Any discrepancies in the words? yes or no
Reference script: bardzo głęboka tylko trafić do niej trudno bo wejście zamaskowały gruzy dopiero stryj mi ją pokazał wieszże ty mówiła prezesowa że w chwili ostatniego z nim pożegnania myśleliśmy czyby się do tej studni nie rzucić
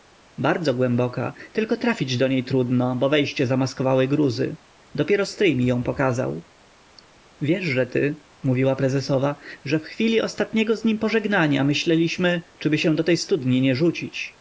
no